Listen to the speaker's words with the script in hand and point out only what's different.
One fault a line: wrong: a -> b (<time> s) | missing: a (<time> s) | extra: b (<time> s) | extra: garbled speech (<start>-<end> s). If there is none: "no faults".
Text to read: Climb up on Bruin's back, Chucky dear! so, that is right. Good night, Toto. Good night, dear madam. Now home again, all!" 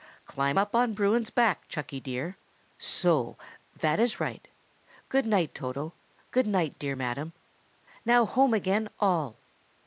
no faults